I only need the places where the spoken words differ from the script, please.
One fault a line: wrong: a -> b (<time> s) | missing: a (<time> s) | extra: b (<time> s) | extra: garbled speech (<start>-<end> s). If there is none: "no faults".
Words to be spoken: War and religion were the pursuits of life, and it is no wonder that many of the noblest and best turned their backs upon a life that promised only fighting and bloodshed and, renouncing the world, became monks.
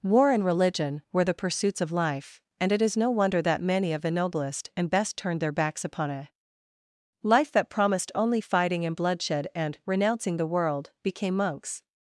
no faults